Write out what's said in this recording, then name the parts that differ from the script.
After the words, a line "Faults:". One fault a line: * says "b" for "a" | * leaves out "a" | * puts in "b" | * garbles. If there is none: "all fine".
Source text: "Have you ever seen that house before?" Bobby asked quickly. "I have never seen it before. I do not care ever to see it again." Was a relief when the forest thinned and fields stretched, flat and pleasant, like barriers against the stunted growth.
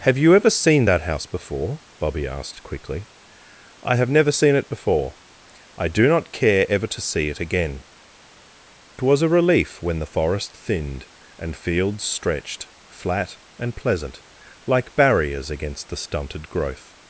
"Have you ever seen that house before?" Bobby asked quickly. "I have never seen it before. I do not care ever to see it again." Was a relief when the forest thinned and fields stretched, flat and pleasant, like barriers against the stunted growth.
Faults:
all fine